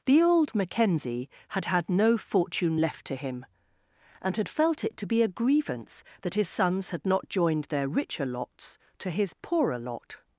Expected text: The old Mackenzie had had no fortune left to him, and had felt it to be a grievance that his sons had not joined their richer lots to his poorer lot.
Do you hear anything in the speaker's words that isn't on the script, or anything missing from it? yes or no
no